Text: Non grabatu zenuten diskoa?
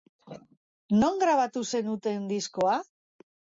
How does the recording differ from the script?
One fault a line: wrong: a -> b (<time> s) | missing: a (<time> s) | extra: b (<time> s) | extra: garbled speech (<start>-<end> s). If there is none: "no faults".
no faults